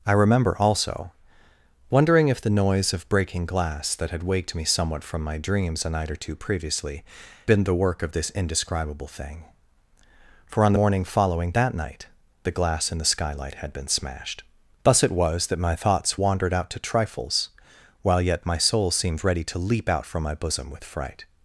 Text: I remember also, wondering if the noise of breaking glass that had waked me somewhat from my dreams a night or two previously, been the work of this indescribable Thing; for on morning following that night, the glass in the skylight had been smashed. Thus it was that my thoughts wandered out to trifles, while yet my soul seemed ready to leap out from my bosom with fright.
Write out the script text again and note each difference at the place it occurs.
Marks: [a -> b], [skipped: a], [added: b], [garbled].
I remember also, wondering if the noise of breaking glass that had waked me somewhat from my dreams a night or two previously, been the work of this indescribable Thing; for on morning following that night, the glass in the skylight had been smashed. Thus it was that my thoughts wandered out to trifles, while yet my soul seemed ready to leap out from my bosom with fright.